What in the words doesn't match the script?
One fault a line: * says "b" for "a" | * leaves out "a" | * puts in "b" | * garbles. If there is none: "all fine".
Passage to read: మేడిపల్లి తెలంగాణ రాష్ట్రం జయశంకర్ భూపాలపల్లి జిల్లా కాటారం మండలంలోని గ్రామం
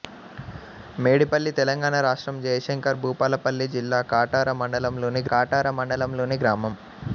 * puts in "కాటారం మండలంలోని"